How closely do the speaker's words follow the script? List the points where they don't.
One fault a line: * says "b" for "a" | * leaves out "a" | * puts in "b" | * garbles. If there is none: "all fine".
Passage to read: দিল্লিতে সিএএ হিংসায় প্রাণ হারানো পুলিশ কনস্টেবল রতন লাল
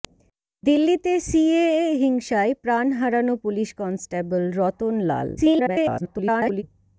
* garbles